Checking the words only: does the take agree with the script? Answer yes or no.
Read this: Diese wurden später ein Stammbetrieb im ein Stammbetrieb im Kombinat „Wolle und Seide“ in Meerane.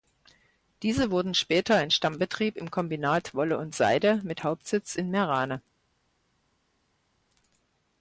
no